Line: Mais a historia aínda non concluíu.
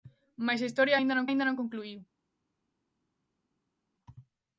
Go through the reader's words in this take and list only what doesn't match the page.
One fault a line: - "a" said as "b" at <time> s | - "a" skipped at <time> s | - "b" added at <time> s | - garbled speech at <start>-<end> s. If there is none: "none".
- "aínda non" added at 1.3 s